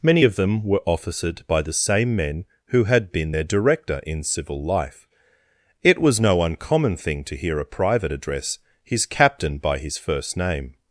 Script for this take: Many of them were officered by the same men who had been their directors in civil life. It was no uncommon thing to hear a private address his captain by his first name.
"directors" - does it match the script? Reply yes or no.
no